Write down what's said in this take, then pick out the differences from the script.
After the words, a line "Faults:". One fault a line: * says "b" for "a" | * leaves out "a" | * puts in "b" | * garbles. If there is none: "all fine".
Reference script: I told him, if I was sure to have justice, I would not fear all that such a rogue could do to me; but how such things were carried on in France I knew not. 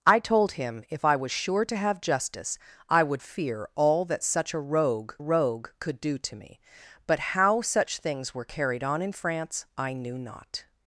I told him, if I was sure to have justice, I would fear all that such a rogue rogue could do to me; but how such things were carried on in France I knew not.
Faults:
* leaves out "not"
* puts in "rogue"